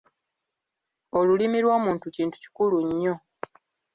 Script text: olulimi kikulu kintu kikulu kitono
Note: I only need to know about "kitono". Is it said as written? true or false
false